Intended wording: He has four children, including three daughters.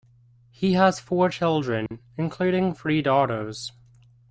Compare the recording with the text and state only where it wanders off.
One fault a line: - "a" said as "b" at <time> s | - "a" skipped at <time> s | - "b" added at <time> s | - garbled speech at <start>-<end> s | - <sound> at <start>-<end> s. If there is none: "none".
- dropout at 1.9-1.9 s